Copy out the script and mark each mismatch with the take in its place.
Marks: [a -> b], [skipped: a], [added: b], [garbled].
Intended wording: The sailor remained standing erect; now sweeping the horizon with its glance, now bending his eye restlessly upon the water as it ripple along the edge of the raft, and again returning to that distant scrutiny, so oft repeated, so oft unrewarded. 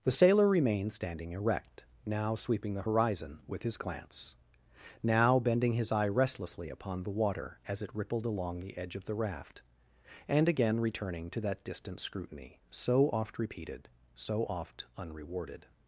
The sailor remained standing erect; now sweeping the horizon with [its -> his] glance, now bending his eye restlessly upon the water as it [ripple -> rippled] along the edge of the raft, and again returning to that distant scrutiny, so oft repeated, so oft unrewarded.